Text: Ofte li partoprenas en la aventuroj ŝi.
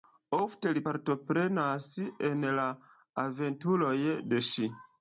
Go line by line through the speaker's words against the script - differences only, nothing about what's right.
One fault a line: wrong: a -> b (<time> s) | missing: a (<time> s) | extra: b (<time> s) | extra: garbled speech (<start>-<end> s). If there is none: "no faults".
extra: de (4.3 s)